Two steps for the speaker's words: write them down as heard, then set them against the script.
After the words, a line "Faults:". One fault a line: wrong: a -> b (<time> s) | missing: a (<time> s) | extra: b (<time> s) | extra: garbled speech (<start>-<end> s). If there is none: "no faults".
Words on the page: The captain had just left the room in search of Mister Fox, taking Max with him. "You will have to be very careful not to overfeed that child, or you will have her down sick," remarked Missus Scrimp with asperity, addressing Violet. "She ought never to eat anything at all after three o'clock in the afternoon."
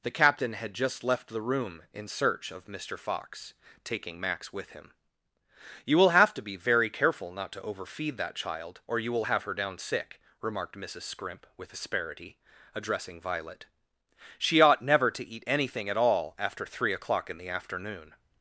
The captain had just left the room in search of Mister Fox, taking Max with him. "You will have to be very careful not to overfeed that child, or you will have her down sick," remarked Missus Scrimp with asperity, addressing Violet. "She ought never to eat anything at all after three o'clock in the afternoon."
Faults:
no faults